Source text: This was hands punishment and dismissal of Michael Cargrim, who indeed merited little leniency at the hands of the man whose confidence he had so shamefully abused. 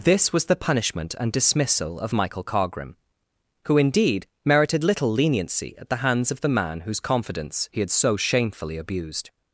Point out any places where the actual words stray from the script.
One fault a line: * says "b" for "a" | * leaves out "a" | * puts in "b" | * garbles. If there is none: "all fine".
* says "the" for "hands"